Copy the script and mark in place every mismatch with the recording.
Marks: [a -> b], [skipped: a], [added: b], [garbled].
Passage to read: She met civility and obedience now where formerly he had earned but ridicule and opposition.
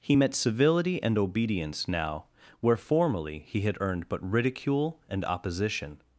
[She -> He] met civility and obedience now where formerly he had earned but ridicule and opposition.